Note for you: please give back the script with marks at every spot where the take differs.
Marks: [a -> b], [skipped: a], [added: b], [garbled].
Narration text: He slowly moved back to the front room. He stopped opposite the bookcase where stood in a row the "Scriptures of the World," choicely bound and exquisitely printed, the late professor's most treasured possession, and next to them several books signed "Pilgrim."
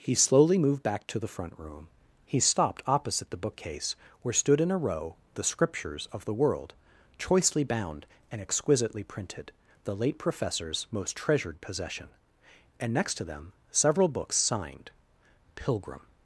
He slowly moved back to the front room. He stopped opposite the bookcase where stood in a row the "Scriptures of the World," choicely bound and exquisitely printed, the late professor's most treasured possession, and next to them several books signed "Pilgrim."